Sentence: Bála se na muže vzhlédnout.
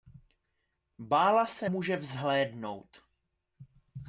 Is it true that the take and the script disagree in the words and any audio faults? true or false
true